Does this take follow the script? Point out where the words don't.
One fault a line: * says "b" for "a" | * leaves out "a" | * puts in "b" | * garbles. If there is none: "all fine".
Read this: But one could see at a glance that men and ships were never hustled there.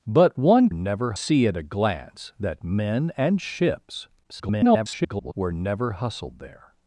* says "never" for "could"
* garbles